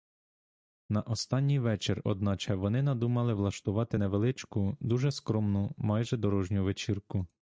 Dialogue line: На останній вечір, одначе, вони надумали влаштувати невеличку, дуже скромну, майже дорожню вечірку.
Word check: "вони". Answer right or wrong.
right